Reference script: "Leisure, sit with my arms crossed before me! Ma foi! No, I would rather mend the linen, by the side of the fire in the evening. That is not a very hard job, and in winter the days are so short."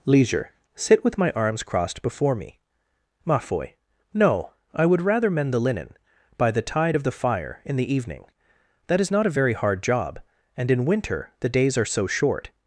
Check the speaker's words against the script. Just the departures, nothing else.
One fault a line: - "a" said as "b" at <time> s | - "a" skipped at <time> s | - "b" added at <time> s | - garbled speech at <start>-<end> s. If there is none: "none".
- "side" said as "tide" at 6.6 s